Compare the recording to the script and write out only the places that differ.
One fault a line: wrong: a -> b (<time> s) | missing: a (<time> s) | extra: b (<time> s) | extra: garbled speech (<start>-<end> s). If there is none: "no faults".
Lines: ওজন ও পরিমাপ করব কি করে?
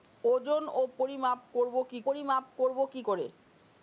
extra: পরিমাপ করব কি (2.1 s)